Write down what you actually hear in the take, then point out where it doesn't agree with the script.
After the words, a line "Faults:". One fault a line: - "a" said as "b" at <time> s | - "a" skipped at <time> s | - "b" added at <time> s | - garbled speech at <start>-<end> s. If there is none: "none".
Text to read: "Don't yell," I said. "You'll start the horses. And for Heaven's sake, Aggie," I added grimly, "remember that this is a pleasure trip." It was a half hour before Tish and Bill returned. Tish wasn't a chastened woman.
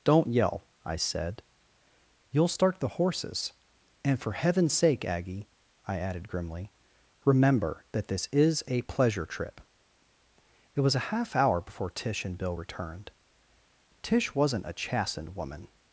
"Don't yell," I said. "You'll start the horses. And for Heaven's sake, Aggie," I added grimly, "remember that this is a pleasure trip." It was a half hour before Tish and Bill returned. Tish wasn't a chastened woman.
Faults:
none